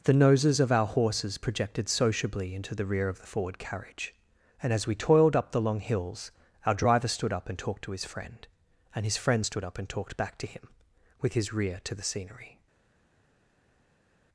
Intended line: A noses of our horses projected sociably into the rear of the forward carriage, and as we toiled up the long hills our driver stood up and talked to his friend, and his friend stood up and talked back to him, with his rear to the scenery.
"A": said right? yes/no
no